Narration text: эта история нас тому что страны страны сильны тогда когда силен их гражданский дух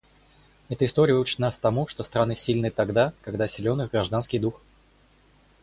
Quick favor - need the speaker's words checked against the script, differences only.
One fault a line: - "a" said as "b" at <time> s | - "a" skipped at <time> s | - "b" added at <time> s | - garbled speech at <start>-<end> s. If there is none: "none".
- "учит" added at 1.2 s
- "страны" skipped at 2.3 s